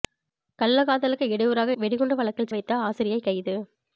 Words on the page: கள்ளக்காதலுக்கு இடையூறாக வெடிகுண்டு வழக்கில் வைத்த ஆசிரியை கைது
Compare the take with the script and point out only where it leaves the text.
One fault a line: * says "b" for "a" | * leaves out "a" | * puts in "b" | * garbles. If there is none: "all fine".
all fine